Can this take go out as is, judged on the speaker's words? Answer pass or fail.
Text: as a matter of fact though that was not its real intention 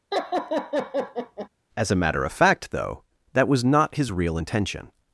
fail